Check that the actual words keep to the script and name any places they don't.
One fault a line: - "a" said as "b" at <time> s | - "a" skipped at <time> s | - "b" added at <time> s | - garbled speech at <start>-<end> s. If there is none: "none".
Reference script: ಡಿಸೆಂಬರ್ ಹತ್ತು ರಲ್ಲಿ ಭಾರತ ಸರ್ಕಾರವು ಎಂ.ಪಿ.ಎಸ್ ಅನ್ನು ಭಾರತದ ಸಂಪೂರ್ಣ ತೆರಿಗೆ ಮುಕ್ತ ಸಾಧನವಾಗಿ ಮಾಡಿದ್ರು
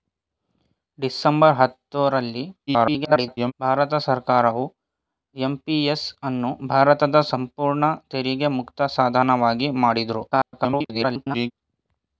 - garbled speech at 2.7-3.5 s
- garbled speech at 10.3-11.5 s